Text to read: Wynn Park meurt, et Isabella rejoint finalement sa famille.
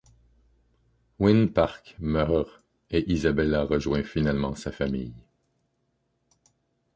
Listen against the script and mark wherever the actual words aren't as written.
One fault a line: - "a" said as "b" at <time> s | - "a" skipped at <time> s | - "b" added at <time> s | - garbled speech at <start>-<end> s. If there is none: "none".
none